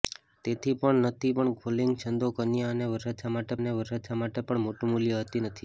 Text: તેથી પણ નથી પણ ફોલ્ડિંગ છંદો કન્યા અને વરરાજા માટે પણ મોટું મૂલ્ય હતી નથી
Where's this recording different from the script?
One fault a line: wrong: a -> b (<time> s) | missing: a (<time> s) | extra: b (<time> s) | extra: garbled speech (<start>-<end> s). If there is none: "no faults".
extra: અને વરરાજા માટે (3.6 s)